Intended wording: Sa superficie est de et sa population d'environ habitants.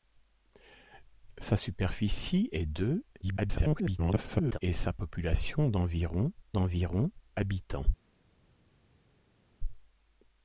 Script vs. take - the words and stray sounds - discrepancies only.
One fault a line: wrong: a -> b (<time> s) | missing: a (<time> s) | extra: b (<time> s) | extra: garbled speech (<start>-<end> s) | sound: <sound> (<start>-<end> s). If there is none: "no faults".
extra: garbled speech (3.2-4.6 s)
extra: d'environ (6.5 s)